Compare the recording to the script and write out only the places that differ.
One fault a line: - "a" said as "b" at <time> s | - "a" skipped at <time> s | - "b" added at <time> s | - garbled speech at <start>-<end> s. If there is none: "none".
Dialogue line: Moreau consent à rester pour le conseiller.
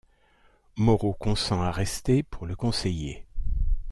none